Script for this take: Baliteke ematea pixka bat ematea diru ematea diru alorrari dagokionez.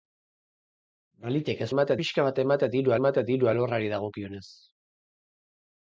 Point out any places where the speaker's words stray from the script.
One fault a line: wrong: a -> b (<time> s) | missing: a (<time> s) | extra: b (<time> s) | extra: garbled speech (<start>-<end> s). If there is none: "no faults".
no faults